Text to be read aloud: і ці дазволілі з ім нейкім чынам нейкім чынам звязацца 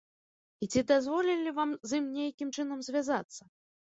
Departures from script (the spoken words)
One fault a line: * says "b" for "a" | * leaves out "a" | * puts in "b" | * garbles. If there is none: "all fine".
* puts in "вам"
* leaves out "нейкім чынам"